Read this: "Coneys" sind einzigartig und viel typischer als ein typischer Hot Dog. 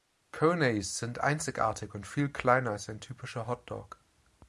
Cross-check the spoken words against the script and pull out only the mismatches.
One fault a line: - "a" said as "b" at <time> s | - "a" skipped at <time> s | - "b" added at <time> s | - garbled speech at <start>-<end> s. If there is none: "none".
- "typischer" said as "kleiner" at 2.3 s